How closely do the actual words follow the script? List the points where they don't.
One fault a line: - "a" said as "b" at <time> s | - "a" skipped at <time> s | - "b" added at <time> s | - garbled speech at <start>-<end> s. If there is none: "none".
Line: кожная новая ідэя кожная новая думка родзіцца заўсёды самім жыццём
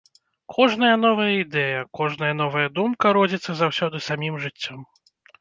none